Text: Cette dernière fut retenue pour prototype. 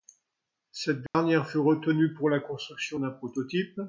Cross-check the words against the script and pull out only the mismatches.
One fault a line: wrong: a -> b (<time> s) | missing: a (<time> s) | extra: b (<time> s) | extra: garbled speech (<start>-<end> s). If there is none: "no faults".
extra: la construction d'un (2.3 s)